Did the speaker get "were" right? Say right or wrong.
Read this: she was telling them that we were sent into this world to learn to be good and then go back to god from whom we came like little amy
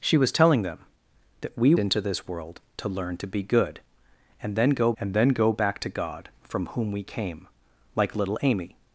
wrong